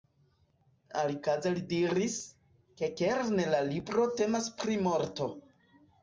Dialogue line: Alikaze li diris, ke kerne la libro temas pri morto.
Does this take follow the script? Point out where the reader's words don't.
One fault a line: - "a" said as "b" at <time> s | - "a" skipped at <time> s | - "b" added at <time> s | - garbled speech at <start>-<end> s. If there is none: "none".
none